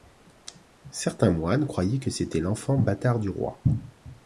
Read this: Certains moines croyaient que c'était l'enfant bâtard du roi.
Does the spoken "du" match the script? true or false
true